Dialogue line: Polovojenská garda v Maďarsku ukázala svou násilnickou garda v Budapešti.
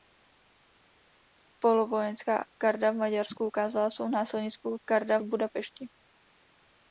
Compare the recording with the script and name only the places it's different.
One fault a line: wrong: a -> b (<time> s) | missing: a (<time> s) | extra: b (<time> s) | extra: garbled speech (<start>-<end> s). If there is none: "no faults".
no faults